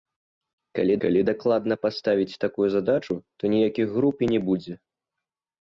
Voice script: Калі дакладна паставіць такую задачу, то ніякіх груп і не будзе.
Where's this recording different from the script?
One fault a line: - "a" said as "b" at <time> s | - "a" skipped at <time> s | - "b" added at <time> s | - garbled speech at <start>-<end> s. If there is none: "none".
- "калі" added at 1.0 s